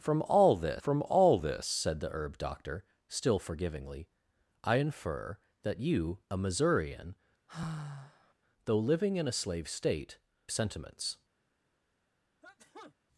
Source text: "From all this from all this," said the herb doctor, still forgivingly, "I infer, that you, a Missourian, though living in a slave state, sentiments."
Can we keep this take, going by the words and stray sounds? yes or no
no